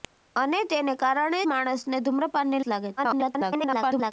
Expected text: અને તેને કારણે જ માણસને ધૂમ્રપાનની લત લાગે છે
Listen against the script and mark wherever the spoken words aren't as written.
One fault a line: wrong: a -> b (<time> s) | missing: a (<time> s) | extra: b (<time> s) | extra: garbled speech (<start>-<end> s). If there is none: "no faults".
missing: જ (1.4 s)
missing: લત (2.6 s)
extra: garbled speech (3.0-4.1 s)